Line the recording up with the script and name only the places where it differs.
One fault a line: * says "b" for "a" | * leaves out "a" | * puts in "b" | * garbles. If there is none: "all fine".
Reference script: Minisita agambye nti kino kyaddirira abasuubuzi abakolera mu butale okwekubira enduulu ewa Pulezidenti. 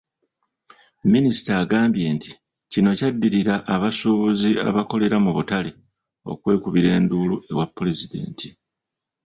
all fine